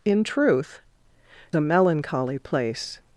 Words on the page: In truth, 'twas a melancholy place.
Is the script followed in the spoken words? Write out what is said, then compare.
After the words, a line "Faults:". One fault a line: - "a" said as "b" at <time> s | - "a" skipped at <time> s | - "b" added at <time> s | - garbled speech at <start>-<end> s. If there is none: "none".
In truth, 'a melancholy place.
Faults:
- "twas" skipped at 0.8 s